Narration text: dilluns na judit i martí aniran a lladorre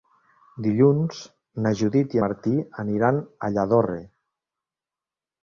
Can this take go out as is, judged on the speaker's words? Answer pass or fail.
pass